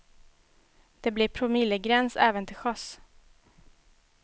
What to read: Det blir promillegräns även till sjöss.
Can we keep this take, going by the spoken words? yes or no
yes